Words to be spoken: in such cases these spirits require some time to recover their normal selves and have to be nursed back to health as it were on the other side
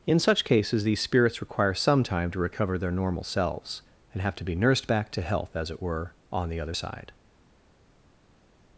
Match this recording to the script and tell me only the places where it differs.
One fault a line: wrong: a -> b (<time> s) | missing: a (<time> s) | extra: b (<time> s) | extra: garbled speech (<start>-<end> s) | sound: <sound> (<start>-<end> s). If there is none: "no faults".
no faults